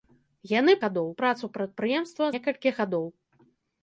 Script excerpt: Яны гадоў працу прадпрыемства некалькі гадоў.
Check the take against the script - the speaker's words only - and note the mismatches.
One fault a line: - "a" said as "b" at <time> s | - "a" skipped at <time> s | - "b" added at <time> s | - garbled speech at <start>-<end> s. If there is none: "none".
none